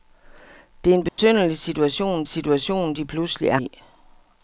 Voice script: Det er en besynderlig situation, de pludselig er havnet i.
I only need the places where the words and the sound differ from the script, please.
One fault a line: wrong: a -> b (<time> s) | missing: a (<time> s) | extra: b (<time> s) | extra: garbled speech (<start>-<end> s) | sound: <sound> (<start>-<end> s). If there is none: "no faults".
sound: dropout (1.1-1.2 s)
extra: situation (2.3 s)
missing: havnet (3.6 s)